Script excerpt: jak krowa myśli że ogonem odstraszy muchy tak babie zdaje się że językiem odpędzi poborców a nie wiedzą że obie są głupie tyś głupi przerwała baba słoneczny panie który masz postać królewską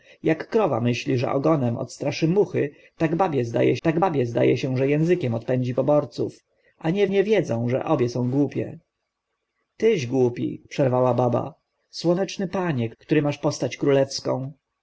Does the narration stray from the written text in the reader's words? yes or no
yes